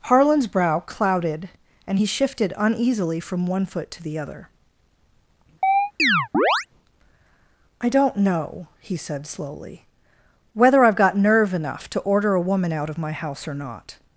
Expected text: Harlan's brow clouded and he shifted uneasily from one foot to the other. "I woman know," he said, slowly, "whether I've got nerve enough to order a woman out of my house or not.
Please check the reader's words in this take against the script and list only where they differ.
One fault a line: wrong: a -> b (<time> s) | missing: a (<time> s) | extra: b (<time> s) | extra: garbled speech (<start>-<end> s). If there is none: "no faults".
wrong: woman -> don't (7.9 s)